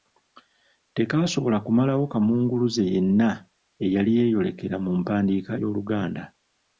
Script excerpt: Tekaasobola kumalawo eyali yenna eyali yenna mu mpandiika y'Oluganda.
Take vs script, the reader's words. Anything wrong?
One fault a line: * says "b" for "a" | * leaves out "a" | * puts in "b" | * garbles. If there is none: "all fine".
* says "kamunguluze" for "eyali"
* says "yeeyolekera" for "yenna"